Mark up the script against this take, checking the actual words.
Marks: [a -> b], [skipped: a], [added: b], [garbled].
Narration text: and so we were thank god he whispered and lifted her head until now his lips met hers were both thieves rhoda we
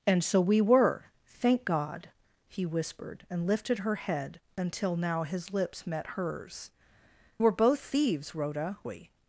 and so we were thank god he whispered and lifted her head until now his lips met hers were both thieves rhoda we